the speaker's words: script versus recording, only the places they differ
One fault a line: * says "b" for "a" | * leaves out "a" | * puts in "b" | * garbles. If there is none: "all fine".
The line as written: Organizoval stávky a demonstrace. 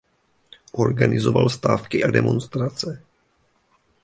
all fine